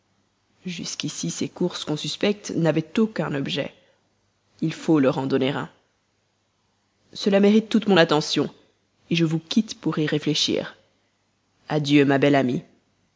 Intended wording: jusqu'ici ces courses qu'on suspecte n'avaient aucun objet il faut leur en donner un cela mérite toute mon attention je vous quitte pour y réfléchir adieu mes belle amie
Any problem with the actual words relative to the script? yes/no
yes